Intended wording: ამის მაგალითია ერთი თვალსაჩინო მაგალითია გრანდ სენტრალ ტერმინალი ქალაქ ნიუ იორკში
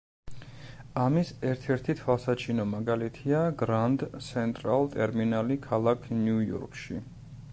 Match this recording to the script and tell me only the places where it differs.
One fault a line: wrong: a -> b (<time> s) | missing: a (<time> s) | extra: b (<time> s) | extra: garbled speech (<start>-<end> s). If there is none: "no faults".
wrong: მაგალითია -> ერთ (1.5 s)